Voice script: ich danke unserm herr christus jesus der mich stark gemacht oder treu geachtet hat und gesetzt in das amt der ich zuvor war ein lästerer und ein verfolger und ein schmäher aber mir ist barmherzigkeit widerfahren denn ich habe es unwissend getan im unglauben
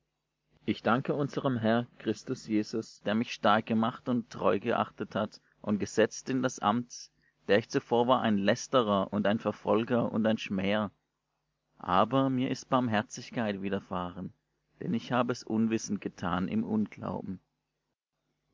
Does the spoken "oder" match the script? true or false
false